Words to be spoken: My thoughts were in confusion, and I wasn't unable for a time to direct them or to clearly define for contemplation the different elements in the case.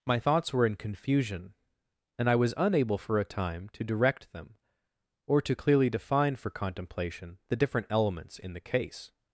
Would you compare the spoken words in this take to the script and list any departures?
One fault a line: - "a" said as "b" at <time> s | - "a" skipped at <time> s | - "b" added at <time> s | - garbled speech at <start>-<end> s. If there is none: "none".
- "wasn't" said as "was" at 2.4 s